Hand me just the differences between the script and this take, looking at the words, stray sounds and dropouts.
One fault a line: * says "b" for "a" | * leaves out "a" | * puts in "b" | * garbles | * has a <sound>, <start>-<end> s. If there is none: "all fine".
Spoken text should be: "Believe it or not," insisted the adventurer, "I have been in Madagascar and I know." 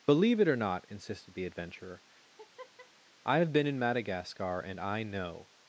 * has a laugh, 2.2-2.9 s